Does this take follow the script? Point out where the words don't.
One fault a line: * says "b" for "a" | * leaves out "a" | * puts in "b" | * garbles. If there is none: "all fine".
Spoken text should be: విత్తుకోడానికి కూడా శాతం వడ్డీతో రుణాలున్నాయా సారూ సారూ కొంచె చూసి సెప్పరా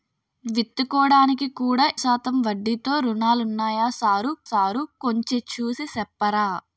all fine